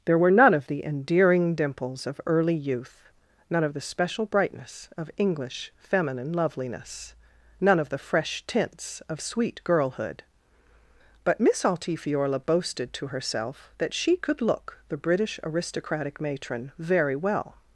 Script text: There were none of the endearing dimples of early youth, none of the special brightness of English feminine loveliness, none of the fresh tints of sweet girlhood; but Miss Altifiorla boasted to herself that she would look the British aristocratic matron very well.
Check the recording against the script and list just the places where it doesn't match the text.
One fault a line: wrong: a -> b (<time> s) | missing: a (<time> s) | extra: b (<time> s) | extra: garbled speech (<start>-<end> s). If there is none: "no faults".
wrong: would -> could (14.2 s)